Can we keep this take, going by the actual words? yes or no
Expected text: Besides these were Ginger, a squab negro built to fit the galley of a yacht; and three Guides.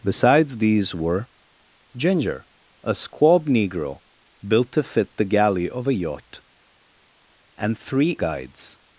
yes